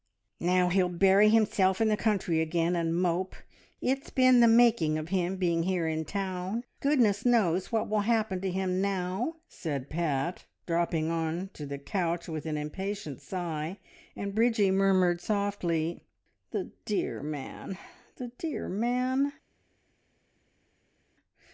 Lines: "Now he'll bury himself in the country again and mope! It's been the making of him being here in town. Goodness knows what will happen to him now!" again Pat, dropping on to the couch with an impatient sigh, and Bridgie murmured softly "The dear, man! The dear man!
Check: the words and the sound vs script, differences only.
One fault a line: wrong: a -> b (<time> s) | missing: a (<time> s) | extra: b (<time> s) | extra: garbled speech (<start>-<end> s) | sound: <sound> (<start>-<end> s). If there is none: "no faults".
wrong: again -> said (9.5 s)